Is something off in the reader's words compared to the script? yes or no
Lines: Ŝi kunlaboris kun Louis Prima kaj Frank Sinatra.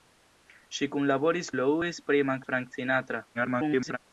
yes